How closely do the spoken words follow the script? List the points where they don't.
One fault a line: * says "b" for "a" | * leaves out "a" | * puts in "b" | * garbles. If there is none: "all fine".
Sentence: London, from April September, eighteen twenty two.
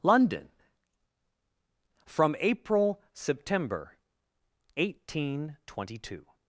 all fine